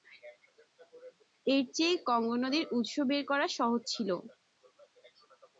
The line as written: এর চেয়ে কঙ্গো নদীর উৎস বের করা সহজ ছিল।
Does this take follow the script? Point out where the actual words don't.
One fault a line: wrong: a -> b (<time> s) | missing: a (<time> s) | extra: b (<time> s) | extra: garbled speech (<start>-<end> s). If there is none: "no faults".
no faults